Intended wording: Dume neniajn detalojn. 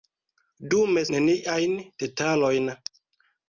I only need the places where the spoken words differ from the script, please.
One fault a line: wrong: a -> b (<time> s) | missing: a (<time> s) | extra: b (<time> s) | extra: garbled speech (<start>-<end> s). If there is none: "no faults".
no faults